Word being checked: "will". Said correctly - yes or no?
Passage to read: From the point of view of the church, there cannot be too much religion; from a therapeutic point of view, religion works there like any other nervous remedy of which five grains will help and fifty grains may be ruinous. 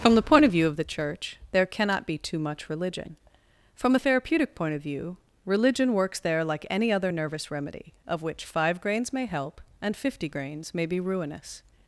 no